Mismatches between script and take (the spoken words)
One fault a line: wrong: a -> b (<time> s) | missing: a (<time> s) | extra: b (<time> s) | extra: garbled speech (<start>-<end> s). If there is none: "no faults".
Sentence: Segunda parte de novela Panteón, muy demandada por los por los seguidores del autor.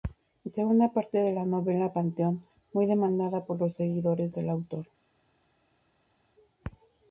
extra: la (1.3 s)
missing: por los (3.7 s)